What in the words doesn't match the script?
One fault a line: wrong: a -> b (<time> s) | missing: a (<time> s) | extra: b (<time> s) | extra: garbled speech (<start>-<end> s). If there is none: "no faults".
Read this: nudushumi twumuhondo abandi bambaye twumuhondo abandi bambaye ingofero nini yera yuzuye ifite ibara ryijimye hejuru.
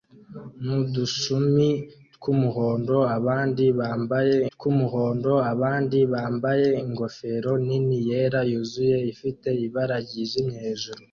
no faults